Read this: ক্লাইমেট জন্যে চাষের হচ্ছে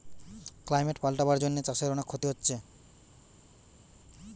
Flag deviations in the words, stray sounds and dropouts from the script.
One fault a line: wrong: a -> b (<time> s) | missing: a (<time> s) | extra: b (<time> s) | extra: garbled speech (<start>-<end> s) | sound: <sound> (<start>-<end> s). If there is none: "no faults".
extra: পাল্টাবার (1.0 s)
extra: অনেক ক্ষতি (1.9 s)